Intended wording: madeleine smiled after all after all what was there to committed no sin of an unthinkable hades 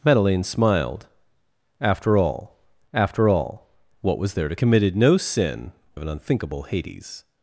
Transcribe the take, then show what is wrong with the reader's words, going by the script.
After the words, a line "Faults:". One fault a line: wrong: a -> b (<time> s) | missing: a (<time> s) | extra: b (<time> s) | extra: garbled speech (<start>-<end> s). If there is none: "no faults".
madeleine smiled after all after all what was there to committed no sin of an unthinkable hades
Faults:
no faults